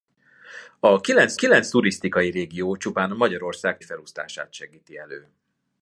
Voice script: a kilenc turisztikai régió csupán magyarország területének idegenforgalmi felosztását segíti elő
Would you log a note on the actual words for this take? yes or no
yes